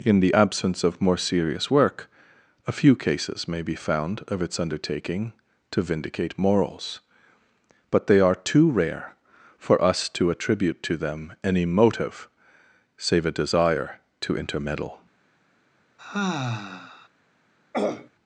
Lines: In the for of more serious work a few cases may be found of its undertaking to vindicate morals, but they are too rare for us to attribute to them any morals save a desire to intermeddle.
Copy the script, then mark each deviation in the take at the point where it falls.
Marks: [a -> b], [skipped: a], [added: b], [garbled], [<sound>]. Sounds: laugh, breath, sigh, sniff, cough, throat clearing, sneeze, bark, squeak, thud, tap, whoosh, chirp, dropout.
In the [for -> absence] of more serious work a few cases may be found of its undertaking to vindicate morals, but they are too rare for us to attribute to them any [morals -> motive] save a desire to intermeddle. [sigh] [throat clearing]